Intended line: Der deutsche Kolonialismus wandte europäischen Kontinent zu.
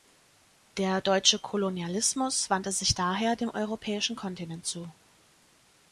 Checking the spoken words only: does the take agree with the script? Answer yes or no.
no